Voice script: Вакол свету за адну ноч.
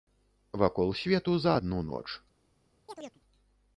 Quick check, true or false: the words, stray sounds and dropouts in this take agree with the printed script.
false